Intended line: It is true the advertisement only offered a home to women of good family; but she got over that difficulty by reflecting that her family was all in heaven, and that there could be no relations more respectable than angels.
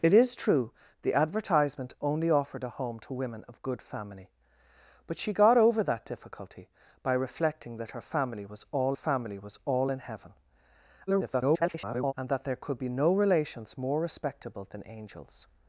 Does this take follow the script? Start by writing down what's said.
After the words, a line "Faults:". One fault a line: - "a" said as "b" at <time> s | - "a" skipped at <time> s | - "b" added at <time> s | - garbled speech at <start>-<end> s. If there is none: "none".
It is true the advertisement only offered a home to women of good family; but she got over that difficulty by reflecting that her family was all family was all in heaven, [garbled] and that there could be no relations more respectable than angels.
Faults:
- "family was all" added at 8.9 s
- garbled speech at 11.1-12.1 s